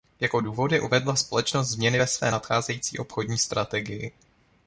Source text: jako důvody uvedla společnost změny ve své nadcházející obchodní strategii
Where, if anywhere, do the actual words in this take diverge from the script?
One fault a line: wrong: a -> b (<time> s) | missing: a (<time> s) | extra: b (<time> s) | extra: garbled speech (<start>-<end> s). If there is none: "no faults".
no faults